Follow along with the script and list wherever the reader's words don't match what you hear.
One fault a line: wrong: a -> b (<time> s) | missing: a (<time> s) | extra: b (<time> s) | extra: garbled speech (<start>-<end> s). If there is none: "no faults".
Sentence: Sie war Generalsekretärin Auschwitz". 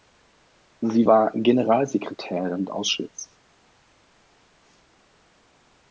no faults